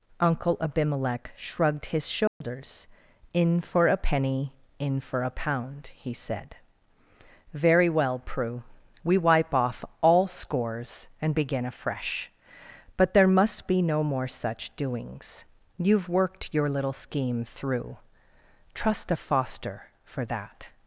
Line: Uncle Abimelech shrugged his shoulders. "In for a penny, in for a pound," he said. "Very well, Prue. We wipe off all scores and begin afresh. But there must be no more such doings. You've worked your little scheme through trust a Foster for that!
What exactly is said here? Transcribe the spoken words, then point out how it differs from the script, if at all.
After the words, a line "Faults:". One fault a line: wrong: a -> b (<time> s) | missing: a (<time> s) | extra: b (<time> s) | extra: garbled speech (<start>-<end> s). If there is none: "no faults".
Uncle Abimelech shrugged his shoulders. "In for a penny, in for a pound," he said. "Very well, Prue. We wipe off all scores and begin afresh. But there must be no more such doings. You've worked your little scheme through trust a Foster for that!
Faults:
no faults